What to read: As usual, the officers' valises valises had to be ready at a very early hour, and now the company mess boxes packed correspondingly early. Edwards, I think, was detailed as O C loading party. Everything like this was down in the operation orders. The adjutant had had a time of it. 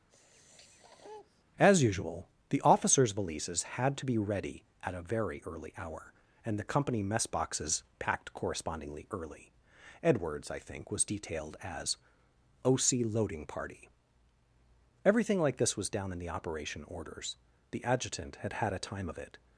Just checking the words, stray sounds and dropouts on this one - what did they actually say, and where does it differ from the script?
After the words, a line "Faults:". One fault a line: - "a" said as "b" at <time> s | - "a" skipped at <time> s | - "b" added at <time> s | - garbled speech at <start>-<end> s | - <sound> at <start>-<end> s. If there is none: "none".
As usual, the officers' valises had to be ready at a very early hour, and the company mess boxes packed correspondingly early. Edwards, I think, was detailed as O C loading party. Everything like this was down in the operation orders. The adjutant had had a time of it.
Faults:
- sniff at 0.1-1.4 s
- "valises" skipped at 3.6 s
- "now" skipped at 6.6 s